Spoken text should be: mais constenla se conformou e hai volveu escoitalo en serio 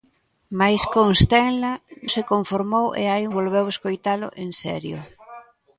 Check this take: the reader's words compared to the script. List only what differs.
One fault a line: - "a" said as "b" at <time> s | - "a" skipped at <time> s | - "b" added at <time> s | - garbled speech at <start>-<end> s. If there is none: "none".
none